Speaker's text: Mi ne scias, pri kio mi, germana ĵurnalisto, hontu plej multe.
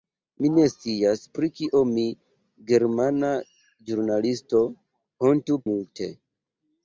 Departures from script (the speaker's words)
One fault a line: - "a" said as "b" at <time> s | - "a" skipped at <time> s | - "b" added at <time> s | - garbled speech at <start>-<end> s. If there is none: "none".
- "plej" skipped at 5.6 s